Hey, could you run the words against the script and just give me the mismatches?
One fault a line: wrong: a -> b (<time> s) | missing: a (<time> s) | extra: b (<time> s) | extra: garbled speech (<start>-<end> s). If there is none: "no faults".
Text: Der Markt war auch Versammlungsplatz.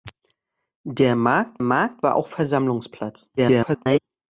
extra: Markt (1.6 s)
extra: garbled speech (3.4-4.0 s)